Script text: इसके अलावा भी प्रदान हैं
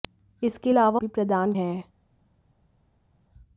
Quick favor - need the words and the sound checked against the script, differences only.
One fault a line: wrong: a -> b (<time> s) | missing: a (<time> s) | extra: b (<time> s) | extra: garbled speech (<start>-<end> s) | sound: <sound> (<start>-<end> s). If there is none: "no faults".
no faults